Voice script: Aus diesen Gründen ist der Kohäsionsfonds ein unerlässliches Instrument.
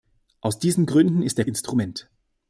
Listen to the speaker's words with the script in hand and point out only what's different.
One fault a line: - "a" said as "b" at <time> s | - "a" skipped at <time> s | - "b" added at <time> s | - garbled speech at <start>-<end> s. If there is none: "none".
- "Kohäsionsfonds ein unerlässliches" skipped at 1.4 s